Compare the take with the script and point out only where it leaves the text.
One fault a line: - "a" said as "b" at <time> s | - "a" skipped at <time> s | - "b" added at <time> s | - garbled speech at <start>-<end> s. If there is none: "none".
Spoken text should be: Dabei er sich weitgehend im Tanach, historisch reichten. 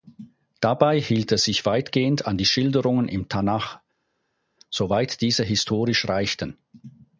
- "hielt" added at 1.0 s
- "an die Schilderungen" added at 2.2 s
- "soweit diese" added at 4.7 s